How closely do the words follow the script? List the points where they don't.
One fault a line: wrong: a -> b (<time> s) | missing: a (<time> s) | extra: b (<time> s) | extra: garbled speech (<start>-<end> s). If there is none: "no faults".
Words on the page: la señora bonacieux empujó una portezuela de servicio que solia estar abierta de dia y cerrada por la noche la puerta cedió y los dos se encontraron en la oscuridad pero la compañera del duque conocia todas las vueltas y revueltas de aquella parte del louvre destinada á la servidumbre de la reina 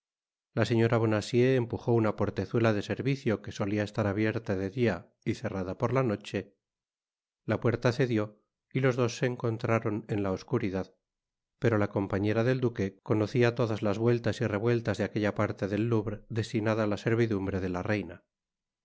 no faults